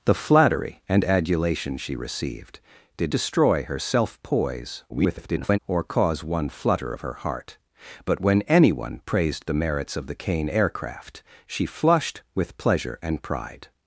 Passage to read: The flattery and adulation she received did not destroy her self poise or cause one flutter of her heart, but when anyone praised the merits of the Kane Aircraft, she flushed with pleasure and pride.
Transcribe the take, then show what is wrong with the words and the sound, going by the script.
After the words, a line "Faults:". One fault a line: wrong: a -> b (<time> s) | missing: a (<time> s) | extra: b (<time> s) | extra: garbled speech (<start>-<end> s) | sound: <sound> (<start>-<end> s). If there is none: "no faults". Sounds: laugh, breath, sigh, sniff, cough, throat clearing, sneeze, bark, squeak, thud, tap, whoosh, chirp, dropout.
The flattery and adulation she received did destroy her self poise [garbled] or cause one flutter of her heart, but when anyone praised the merits of the Kane Aircraft, she flushed with pleasure and pride.
Faults:
missing: not (3.1 s)
extra: garbled speech (4.9-5.6 s)